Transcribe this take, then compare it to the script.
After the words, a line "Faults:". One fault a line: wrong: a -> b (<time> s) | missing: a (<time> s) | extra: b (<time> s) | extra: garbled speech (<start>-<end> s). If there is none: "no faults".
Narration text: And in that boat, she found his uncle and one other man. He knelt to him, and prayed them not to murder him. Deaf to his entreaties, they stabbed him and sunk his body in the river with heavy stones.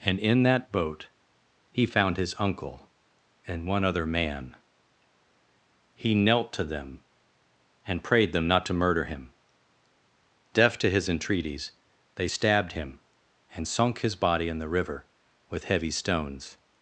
And in that boat, he found his uncle and one other man. He knelt to them, and prayed them not to murder him. Deaf to his entreaties, they stabbed him and sunk his body in the river with heavy stones.
Faults:
wrong: she -> he (1.7 s)
wrong: him -> them (6.6 s)